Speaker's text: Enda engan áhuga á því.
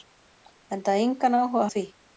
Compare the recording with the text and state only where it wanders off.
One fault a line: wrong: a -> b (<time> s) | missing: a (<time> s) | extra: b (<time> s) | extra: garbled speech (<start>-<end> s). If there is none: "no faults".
no faults